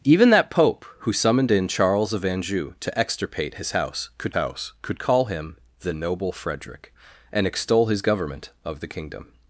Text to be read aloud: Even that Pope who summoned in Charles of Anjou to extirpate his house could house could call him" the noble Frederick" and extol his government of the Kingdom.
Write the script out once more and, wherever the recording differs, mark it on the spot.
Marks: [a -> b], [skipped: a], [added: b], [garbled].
Even that Pope who summoned in Charles of Anjou to extirpate his house could house could call him" the noble Frederick" and extol his government of the Kingdom.